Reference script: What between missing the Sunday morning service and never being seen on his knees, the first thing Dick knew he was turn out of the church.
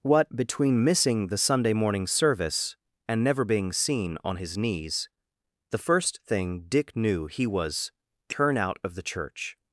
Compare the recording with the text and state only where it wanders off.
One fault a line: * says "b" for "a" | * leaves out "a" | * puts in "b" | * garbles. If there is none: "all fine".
all fine